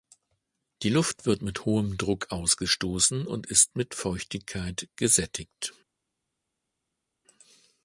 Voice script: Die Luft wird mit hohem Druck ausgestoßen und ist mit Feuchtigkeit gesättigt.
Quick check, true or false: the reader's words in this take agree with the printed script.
true